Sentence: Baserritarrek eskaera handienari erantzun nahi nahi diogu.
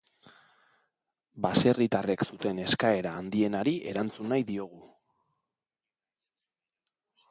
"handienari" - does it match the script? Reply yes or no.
yes